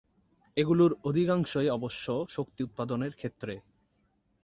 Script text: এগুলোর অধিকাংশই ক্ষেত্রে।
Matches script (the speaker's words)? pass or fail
fail